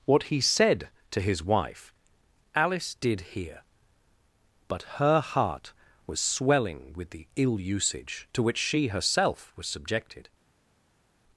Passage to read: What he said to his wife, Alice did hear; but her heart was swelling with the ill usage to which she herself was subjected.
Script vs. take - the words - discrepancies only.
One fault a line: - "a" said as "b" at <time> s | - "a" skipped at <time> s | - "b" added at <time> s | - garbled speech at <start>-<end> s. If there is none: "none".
none